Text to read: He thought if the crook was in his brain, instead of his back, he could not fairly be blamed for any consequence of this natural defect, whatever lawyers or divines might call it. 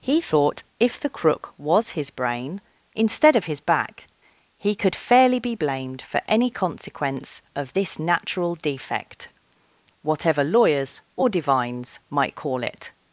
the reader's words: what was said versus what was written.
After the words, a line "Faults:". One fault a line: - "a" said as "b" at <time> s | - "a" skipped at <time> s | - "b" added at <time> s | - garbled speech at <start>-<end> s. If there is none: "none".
He thought if the crook was his brain, instead of his back, he could fairly be blamed for any consequence of this natural defect, whatever lawyers or divines might call it.
Faults:
- "in" skipped at 1.9 s
- "not" skipped at 5.0 s